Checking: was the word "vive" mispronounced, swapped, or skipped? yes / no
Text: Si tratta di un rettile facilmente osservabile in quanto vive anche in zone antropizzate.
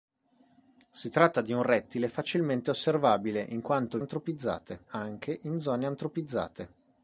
yes